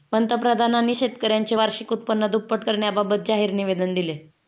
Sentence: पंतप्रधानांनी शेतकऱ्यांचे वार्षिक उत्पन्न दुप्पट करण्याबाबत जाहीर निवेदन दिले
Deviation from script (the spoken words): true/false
false